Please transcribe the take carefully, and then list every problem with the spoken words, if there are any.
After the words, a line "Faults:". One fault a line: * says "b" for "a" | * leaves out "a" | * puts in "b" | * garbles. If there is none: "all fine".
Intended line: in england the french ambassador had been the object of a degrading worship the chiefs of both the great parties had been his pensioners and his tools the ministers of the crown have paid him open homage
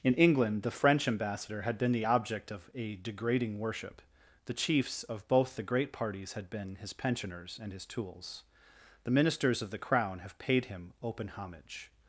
in england the french ambassador had been the object of a degrading worship the chiefs of both the great parties had been his pensioners and his tools the ministers of the crown have paid him open homage
Faults:
all fine